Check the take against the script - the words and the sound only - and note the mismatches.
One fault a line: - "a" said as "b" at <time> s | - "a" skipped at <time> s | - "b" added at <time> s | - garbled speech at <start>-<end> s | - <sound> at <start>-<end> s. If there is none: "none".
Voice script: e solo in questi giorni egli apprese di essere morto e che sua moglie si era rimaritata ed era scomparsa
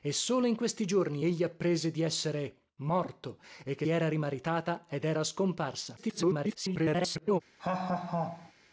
- "sua moglie si" skipped at 3.8 s
- garbled speech at 6.0-7.4 s
- laugh at 7.6-8.5 s